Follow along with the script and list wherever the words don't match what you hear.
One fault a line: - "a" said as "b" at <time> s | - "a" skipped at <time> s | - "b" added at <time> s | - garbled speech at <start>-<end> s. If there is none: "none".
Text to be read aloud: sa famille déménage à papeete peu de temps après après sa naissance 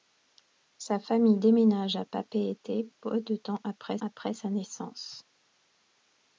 none